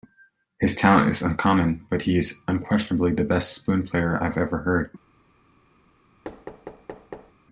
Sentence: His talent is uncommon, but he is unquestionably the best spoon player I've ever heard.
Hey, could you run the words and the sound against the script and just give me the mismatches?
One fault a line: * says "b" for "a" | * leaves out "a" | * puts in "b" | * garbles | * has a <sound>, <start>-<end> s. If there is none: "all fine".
* has a thud, 6.2-7.3 s